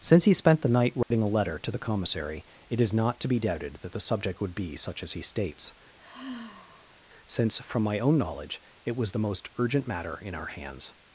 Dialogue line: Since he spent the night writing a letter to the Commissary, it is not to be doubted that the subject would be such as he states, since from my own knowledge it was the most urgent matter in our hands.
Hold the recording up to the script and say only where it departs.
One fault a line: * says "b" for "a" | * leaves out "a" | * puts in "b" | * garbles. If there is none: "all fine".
all fine